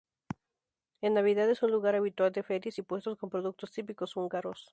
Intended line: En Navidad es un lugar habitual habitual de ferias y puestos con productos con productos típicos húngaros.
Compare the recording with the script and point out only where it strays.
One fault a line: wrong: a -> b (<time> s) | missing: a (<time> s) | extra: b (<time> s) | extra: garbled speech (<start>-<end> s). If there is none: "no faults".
missing: habitual (2.3 s)
missing: con productos (3.7 s)